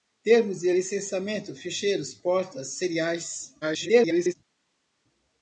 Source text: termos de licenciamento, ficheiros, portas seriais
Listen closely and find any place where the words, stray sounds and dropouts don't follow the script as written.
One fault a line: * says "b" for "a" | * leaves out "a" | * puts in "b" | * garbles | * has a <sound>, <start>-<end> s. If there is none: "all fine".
* garbles